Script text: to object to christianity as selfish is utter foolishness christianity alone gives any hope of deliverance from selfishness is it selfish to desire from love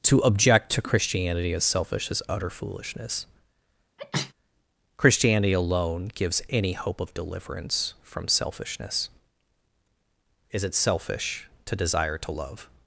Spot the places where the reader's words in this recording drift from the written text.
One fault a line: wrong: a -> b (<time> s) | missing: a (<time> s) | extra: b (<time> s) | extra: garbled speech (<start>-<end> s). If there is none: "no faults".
wrong: from -> to (12.2 s)